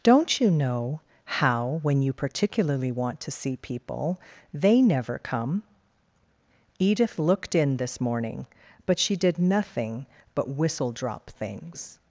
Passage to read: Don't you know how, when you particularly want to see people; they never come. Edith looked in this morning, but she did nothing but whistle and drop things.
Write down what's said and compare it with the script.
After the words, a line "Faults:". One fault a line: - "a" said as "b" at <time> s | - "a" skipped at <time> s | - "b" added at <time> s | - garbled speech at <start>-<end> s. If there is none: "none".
Don't you know how, when you particularly want to see people; they never come. Edith looked in this morning, but she did nothing but whistle drop things.
Faults:
- "and" skipped at 10.9 s